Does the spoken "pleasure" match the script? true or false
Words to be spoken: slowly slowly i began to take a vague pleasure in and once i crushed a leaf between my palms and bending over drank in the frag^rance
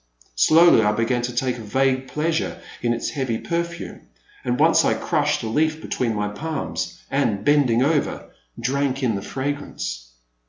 true